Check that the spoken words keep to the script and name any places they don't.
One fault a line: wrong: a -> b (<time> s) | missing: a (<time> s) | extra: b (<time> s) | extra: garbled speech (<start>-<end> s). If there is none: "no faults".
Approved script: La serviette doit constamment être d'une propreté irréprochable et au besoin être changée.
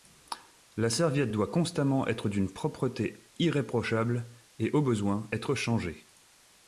no faults